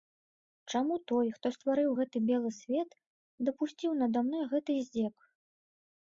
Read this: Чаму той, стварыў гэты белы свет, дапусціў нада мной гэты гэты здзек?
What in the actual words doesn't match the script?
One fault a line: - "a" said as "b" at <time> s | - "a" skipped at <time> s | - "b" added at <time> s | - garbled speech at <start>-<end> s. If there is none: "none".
- "хто" added at 1.4 s
- "гэты" skipped at 4.7 s